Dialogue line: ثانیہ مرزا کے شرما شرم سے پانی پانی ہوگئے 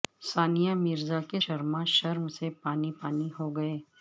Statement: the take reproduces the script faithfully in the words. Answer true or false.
true